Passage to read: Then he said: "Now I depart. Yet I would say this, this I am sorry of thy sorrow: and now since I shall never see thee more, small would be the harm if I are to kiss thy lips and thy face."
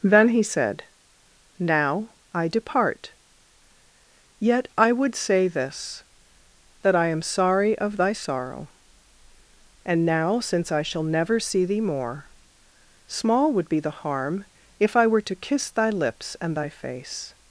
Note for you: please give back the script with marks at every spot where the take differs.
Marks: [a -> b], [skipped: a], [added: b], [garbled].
Then he said: "Now I depart. Yet I would say this, [this -> that] I am sorry of thy sorrow: and now since I shall never see thee more, small would be the harm if I [are -> were] to kiss thy lips and thy face."